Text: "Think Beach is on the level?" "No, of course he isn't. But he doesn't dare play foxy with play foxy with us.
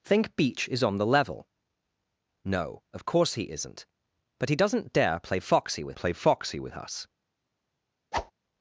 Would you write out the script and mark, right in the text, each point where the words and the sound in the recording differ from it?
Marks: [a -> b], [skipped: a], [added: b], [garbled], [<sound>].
"Think Beach is on the level?" "No, of course he isn't. But he doesn't dare play foxy with play foxy with us. [whoosh]